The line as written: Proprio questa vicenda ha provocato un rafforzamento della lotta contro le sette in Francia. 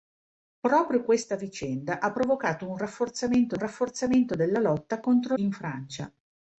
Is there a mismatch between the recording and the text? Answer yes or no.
yes